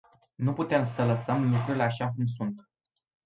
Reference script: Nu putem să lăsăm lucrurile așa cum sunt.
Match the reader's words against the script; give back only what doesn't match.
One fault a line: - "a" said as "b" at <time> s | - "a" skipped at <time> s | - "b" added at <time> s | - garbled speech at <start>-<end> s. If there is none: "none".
none